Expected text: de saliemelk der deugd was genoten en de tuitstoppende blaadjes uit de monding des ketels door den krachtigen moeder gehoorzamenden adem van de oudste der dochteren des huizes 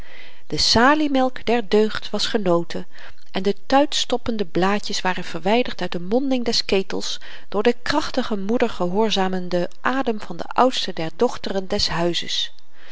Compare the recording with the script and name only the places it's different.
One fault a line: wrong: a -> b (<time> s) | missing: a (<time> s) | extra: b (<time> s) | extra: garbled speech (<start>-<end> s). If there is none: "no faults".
extra: waren verwyderd (5.0 s)